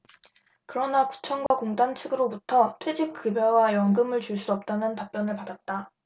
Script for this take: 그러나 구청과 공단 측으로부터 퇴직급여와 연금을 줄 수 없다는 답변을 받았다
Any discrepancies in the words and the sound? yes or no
yes